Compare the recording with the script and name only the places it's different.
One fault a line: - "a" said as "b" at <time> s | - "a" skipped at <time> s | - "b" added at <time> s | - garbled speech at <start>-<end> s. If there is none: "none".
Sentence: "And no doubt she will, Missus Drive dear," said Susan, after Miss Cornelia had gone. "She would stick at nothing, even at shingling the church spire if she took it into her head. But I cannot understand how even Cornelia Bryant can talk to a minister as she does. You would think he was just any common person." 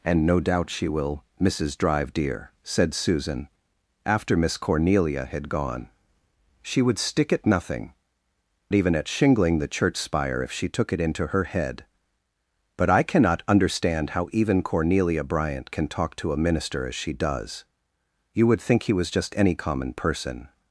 none